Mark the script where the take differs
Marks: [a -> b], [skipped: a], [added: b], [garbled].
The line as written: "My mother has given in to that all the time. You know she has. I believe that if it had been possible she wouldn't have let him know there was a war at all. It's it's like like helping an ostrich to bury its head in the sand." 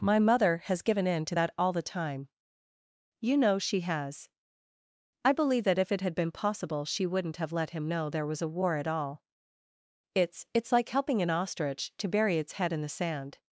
"My mother has given in to that all the time. You know she has. I believe that if it had been possible she wouldn't have let him know there was a war at all. It's it's like [skipped: like] helping an ostrich to bury its head in the sand."